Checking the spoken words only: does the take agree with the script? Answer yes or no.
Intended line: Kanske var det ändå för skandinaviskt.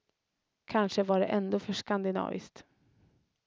yes